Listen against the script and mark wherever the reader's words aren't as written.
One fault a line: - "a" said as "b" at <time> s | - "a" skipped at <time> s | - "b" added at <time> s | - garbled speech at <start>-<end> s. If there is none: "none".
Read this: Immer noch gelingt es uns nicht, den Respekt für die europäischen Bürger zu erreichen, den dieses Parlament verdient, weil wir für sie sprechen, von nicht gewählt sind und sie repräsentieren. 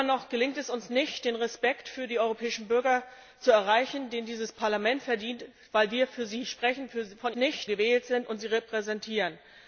none